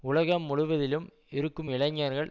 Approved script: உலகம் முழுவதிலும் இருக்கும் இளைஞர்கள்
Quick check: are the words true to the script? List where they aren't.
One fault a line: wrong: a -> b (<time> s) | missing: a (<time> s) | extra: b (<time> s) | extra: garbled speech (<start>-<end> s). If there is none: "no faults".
no faults